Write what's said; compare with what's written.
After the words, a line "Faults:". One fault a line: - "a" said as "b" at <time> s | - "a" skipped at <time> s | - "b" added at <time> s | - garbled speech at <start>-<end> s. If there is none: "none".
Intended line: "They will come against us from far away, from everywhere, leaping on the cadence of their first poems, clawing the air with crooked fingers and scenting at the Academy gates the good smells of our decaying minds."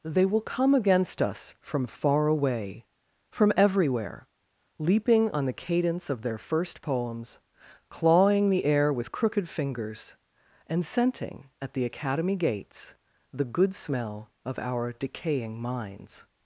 "They will come against us from far away, from everywhere, leaping on the cadence of their first poems, clawing the air with crooked fingers and scenting at the Academy gates the good smell of our decaying minds."
Faults:
- "smells" said as "smell" at 13.8 s